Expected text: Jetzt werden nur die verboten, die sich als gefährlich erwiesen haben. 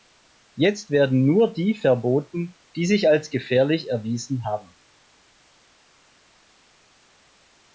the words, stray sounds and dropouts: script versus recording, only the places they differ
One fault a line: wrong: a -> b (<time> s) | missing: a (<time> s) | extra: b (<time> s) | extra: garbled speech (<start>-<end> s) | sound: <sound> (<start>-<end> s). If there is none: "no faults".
no faults